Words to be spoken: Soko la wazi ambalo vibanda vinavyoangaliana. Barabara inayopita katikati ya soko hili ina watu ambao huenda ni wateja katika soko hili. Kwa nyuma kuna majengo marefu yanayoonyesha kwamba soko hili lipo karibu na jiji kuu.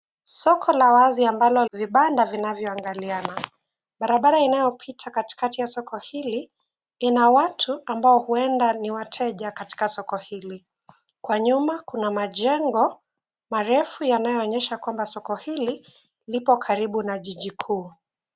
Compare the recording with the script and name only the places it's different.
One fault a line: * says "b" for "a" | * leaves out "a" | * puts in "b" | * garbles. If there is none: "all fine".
all fine